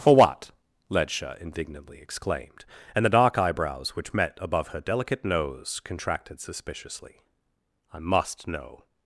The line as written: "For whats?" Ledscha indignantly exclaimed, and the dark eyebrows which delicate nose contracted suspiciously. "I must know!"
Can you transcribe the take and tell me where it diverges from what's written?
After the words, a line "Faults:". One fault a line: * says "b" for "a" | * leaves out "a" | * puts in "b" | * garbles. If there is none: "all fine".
"For what?" Ledscha indignantly exclaimed, and the dark eyebrows which met above her delicate nose contracted suspiciously. "I must know!"
Faults:
* says "what" for "whats"
* puts in "met above her"